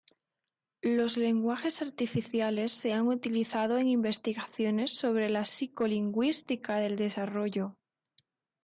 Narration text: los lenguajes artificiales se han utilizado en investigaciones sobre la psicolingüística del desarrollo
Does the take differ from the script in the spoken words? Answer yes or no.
no